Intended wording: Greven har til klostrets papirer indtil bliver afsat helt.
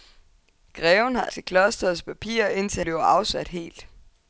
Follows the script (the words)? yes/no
yes